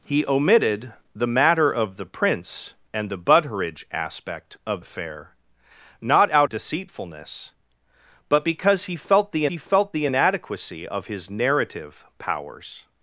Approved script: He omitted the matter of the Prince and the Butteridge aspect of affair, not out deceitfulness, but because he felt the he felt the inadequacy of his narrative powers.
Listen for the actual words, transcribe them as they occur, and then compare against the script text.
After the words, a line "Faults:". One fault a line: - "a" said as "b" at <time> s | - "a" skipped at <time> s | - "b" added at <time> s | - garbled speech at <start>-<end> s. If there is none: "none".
He omitted the matter of the Prince and the Butteridge aspect of affair, not out deceitfulness, but because he felt the he felt the inadequacy of his narrative powers.
Faults:
none